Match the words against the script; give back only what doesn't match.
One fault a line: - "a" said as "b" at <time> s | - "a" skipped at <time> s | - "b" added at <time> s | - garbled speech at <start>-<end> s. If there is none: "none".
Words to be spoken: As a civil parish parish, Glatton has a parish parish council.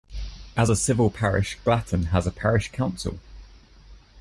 - "parish" skipped at 1.6 s
- "parish" skipped at 2.7 s